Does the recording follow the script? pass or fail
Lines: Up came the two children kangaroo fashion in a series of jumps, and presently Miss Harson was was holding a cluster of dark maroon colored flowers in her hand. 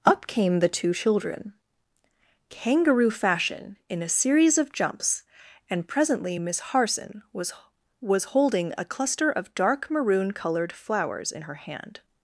pass